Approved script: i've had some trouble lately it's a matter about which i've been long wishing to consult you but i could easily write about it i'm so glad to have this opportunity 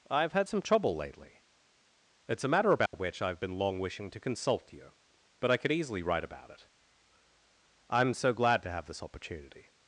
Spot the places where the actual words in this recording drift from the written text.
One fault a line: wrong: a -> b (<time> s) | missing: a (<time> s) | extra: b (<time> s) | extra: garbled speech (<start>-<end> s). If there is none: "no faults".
no faults